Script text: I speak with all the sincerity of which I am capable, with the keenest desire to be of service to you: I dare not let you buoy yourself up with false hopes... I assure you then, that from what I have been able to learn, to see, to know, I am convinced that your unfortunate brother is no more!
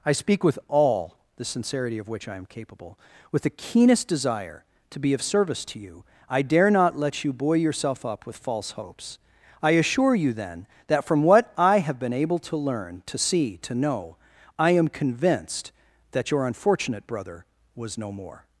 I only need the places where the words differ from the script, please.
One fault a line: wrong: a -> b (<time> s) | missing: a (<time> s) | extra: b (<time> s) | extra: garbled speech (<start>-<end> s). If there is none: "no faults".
wrong: is -> was (17.8 s)